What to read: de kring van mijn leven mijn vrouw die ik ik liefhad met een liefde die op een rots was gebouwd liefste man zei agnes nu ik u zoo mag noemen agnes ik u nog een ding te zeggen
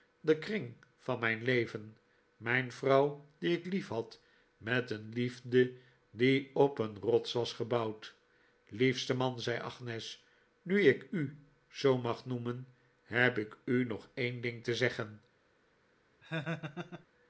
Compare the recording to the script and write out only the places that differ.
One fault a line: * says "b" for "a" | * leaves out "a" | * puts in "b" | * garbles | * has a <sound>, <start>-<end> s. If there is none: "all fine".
* leaves out "ik"
* says "heb" for "agnes"
* has a laugh, 16.2-17.1 s